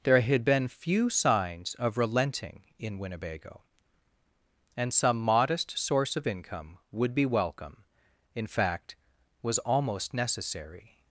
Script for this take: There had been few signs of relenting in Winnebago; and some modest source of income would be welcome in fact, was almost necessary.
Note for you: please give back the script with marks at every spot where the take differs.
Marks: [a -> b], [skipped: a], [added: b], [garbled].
There had been few signs of relenting in Winnebago; and some modest source of income would be welcome in fact, was almost necessary.